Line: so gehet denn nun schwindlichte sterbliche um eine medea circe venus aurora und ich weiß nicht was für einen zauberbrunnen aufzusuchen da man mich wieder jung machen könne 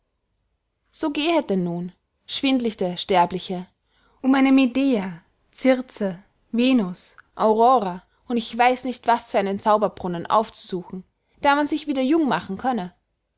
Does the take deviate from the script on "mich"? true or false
true